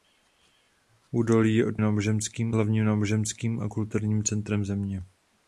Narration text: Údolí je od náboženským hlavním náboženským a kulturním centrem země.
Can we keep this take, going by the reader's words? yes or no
yes